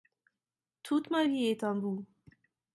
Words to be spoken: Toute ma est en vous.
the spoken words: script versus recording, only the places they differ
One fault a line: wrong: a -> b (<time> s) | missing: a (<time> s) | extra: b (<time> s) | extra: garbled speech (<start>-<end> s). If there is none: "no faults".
extra: vie (1.2 s)